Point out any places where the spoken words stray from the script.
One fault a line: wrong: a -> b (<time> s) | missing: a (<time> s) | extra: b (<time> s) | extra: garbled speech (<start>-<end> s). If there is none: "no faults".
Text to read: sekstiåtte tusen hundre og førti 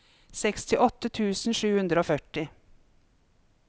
extra: sju (1.6 s)